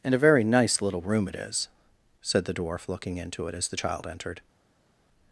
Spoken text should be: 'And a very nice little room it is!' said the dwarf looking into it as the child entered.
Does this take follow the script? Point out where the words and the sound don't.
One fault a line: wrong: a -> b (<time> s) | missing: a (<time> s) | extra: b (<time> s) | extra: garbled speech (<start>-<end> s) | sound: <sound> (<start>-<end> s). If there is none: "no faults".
no faults